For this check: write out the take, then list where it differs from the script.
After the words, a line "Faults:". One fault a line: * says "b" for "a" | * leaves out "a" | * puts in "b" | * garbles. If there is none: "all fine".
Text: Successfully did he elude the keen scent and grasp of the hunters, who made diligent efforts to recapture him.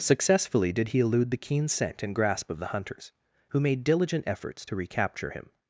Successfully did he elude the keen scent and grasp of the hunters, who made diligent efforts to recapture him.
Faults:
all fine